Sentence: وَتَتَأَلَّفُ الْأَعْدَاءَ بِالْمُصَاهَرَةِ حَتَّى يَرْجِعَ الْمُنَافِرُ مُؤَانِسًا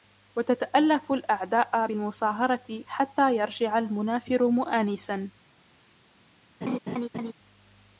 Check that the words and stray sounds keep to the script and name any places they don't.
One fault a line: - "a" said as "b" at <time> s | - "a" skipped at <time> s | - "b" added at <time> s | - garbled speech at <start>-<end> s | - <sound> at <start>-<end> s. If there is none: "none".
- laugh at 6.6-7.3 s